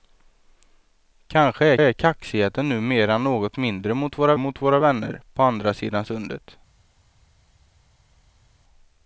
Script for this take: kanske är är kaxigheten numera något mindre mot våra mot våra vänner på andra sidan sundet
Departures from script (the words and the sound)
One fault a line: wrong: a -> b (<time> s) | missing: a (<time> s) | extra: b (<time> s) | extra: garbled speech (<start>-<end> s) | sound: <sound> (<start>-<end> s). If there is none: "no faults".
no faults